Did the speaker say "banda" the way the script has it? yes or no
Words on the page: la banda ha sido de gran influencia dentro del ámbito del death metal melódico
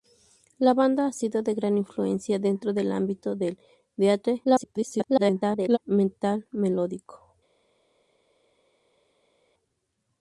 yes